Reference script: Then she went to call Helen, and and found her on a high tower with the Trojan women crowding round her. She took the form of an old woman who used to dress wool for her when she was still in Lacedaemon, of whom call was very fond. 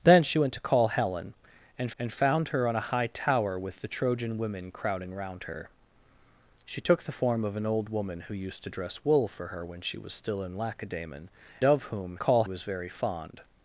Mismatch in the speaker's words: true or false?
false